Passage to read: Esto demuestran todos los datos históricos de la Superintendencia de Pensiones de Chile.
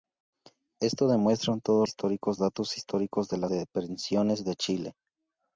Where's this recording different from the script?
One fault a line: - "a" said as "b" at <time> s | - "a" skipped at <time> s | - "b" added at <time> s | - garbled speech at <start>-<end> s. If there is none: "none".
- "los" said as "históricos" at 1.9 s
- "Superintendencia" skipped at 3.5 s